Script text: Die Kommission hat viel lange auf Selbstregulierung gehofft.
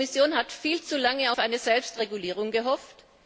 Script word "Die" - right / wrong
right